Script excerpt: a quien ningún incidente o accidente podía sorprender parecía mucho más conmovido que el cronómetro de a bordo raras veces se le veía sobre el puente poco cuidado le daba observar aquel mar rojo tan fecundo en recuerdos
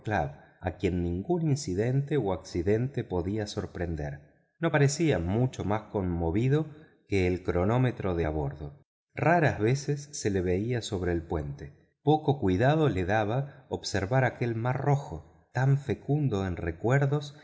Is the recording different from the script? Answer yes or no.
yes